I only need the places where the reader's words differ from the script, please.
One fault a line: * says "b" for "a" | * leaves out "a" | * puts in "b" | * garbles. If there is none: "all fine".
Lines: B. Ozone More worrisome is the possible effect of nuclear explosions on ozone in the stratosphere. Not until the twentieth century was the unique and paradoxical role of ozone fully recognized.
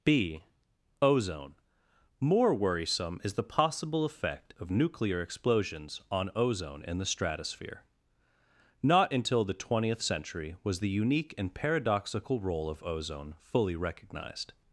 all fine